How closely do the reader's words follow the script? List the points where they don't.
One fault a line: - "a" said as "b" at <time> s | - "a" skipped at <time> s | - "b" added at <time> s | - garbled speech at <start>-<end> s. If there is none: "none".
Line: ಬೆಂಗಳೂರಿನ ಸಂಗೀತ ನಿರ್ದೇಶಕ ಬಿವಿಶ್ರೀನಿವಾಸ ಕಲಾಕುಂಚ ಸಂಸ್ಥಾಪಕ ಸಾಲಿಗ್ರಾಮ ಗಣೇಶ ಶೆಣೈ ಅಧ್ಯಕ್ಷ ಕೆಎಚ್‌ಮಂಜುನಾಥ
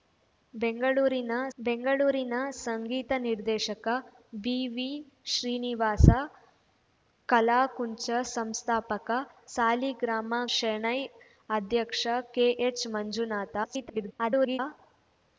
- "ಬೆಂಗಳೂರಿನ" added at 1.6 s
- "ಗಣೇಶ" skipped at 10.3 s
- garbled speech at 13.6-14.6 s